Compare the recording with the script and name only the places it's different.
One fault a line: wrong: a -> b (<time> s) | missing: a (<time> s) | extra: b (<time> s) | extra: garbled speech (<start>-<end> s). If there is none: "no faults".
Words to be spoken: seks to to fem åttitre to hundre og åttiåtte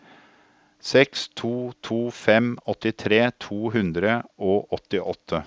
no faults